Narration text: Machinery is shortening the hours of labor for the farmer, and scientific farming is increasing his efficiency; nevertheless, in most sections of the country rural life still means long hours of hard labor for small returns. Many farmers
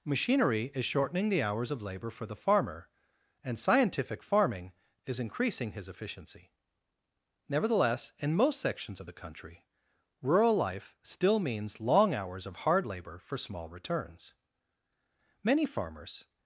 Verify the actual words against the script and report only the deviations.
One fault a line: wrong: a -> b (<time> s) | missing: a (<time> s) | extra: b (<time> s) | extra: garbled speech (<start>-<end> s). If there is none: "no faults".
no faults